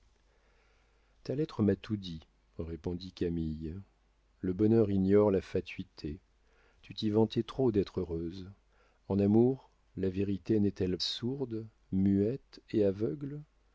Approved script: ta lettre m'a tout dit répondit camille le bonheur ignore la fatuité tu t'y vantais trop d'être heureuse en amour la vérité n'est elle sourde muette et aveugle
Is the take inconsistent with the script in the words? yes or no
no